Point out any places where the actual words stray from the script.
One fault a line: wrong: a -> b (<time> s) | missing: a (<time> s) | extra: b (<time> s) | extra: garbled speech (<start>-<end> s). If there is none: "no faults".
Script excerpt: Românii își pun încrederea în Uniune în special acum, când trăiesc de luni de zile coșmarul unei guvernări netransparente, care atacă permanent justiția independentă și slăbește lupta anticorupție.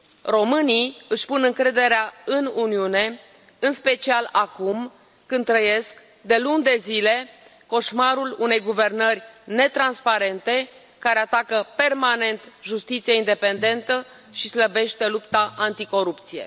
no faults